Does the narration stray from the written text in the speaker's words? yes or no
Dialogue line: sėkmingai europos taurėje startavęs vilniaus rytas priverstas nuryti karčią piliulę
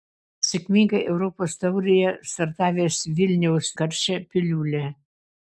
yes